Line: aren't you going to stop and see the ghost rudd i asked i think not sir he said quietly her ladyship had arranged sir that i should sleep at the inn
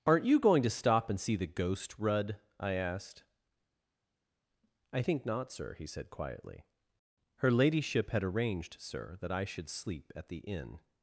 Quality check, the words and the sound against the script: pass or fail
pass